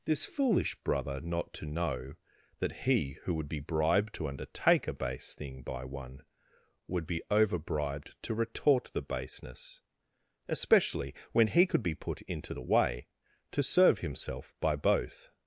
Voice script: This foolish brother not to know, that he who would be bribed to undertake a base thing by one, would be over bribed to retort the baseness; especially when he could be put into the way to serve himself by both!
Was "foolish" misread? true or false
false